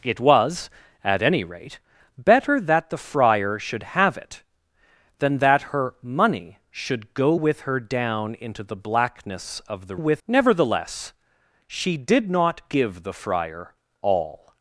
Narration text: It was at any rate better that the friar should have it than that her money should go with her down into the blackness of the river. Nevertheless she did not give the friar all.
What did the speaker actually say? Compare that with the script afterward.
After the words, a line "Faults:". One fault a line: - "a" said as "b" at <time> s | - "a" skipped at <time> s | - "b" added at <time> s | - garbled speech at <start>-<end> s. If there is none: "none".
It was at any rate better that the friar should have it than that her money should go with her down into the blackness of the with. Nevertheless she did not give the friar all.
Faults:
- "river" said as "with" at 9.9 s